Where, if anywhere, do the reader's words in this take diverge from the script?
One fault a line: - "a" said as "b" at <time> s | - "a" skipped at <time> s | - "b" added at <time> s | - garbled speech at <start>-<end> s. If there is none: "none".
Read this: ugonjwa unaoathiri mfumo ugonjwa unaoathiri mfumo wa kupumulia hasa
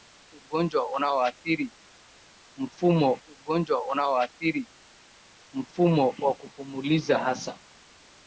none